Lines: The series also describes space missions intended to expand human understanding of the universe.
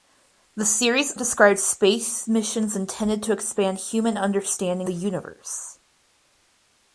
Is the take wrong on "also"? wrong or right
wrong